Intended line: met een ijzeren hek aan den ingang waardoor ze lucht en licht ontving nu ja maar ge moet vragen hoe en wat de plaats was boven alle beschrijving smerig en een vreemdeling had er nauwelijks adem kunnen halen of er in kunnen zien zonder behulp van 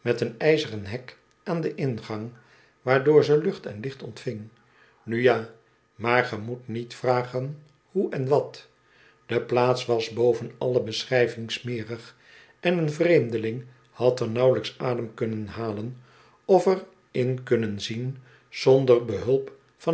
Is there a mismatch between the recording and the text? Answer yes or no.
yes